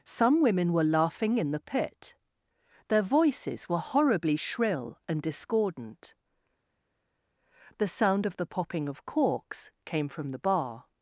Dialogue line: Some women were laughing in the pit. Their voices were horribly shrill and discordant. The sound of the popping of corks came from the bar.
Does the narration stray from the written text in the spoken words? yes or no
no